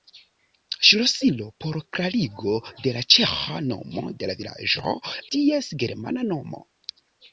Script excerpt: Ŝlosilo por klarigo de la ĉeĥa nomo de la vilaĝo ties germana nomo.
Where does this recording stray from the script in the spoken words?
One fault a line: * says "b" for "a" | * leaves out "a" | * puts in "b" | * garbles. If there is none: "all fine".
all fine